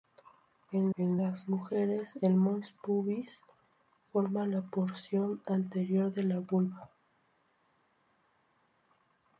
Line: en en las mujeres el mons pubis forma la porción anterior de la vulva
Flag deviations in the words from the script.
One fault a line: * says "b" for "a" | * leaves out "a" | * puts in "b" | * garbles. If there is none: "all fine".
all fine